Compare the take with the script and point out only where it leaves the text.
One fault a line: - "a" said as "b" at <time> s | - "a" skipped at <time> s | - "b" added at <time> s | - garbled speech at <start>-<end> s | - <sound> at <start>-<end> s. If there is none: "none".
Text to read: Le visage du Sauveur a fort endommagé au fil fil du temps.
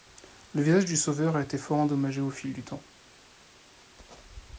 - "été" added at 1.4 s
- "fil" skipped at 2.5 s